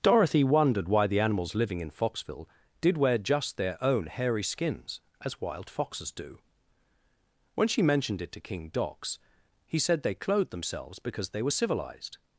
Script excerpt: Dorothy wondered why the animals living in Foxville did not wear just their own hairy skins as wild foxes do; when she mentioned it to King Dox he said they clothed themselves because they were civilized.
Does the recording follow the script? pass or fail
fail